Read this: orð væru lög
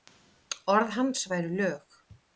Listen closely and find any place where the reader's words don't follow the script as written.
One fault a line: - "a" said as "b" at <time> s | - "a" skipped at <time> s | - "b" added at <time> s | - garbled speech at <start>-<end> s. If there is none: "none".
- "hans" added at 0.9 s